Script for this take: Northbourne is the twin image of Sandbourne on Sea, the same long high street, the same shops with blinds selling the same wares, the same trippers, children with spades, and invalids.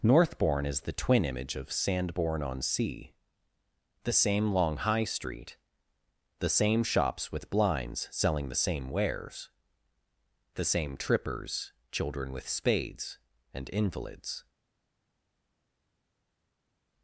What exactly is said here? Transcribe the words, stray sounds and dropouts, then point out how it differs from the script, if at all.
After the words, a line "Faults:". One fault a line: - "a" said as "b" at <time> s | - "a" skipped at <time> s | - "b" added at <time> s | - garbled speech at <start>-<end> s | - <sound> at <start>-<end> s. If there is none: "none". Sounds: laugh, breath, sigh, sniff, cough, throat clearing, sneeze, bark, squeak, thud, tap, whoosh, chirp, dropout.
Northbourne is the twin image of Sandbourne on Sea, the same long high street, the same shops with blinds selling the same wares, the same trippers, children with spades, and invalids.
Faults:
none